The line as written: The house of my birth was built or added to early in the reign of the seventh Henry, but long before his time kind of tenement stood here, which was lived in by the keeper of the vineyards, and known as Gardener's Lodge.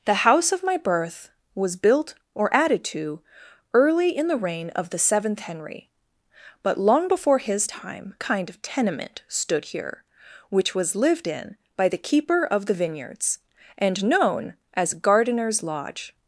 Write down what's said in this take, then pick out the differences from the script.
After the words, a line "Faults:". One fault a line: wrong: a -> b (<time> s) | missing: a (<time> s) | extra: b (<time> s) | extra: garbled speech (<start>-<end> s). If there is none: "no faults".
The house of my birth was built or added to early in the reign of the seventh Henry, but long before his time kind of tenement stood here, which was lived in by the keeper of the vineyards, and known as Gardener's Lodge.
Faults:
no faults